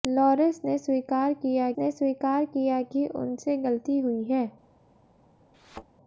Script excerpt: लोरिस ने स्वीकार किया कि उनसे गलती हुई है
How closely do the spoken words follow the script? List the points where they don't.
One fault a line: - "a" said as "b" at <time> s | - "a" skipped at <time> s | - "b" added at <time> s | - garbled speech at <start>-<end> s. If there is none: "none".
- "ने स्वीकार किया" added at 1.8 s